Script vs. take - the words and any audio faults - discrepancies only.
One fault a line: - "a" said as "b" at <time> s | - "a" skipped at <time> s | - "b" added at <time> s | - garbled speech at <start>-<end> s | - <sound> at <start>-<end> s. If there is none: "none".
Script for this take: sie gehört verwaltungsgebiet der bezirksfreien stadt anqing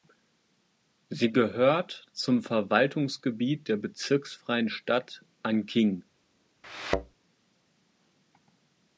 - "zum" added at 2.1 s
- thud at 6.6-7.1 s